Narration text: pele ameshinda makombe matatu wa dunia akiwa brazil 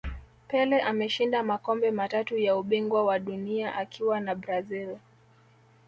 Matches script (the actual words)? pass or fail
fail